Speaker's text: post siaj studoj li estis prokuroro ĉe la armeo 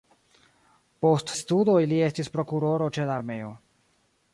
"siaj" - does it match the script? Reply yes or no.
no